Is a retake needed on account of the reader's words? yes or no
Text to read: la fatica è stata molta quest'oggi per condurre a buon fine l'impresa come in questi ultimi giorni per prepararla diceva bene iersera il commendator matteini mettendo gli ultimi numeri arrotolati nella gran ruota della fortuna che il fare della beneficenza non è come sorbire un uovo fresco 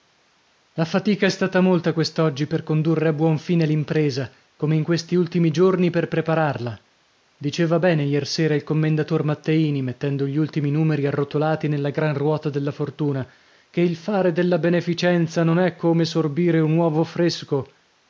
no